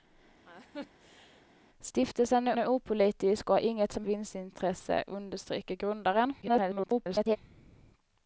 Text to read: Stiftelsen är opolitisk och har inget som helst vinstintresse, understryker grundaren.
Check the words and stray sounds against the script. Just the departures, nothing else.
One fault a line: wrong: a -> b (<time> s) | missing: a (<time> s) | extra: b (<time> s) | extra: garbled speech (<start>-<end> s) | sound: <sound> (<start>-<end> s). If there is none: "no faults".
sound: laugh (0.4-1.5 s)
extra: är (2.6 s)
missing: helst (4.1 s)
extra: garbled speech (6.4-7.4 s)